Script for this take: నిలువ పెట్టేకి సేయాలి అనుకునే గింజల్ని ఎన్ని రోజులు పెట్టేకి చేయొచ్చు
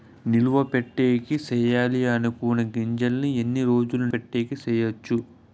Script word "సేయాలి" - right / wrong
right